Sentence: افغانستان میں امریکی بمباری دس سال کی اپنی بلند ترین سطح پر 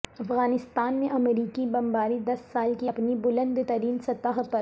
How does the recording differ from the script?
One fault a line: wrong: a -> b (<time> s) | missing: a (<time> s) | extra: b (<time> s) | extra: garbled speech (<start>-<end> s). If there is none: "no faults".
no faults